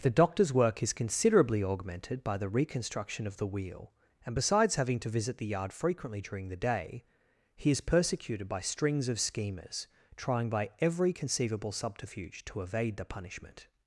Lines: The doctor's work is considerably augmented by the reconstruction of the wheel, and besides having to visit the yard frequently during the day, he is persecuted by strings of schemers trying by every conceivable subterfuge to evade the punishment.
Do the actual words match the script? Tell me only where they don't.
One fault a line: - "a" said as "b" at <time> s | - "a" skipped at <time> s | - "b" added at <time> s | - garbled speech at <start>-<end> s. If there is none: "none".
none